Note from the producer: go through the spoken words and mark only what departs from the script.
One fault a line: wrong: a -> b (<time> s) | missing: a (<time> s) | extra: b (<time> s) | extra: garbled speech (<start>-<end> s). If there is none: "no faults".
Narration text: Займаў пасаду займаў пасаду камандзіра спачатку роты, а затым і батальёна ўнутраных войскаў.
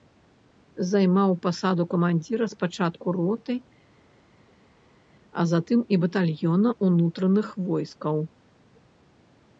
missing: займаў пасаду (1.8 s)